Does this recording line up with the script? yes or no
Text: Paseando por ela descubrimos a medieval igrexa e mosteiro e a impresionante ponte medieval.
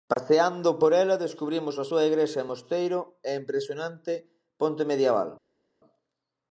no